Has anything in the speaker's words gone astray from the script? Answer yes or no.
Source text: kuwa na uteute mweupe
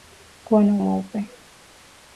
yes